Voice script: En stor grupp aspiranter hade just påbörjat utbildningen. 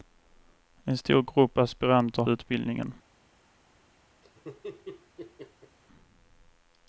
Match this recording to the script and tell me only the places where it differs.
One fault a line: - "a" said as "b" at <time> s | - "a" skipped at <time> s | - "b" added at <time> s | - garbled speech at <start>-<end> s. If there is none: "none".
- "hade just påbörjat" skipped at 2.2 s